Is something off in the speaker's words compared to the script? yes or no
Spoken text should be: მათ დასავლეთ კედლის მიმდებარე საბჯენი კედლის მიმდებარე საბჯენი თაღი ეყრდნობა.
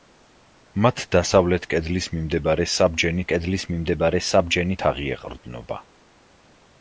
no